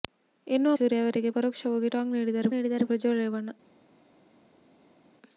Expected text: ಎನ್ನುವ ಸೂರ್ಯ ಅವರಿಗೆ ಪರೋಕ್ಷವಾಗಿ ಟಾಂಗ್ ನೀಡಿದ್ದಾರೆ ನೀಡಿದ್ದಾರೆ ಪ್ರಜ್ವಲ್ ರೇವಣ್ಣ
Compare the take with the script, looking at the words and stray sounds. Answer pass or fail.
pass